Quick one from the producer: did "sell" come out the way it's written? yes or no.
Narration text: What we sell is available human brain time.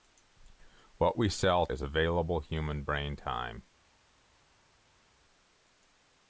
yes